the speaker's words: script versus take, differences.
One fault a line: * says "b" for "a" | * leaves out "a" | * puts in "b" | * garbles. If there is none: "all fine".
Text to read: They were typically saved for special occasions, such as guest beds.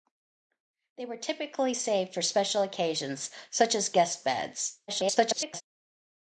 * garbles